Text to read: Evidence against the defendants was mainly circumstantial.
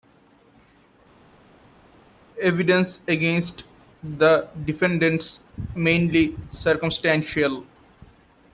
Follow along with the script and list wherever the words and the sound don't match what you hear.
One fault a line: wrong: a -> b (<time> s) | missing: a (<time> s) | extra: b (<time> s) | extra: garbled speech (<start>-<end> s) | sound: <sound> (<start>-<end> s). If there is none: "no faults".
missing: was (5.4 s)